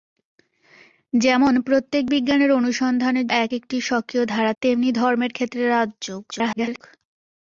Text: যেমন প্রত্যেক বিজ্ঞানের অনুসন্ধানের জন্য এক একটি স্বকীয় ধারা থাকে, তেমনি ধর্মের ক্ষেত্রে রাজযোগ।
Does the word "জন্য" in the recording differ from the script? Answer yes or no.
yes